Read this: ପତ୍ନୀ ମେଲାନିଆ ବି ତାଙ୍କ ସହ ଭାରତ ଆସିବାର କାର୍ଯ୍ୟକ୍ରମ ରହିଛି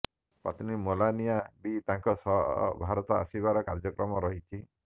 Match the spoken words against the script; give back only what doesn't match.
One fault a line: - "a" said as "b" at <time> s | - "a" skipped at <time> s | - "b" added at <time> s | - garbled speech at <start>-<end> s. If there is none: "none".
none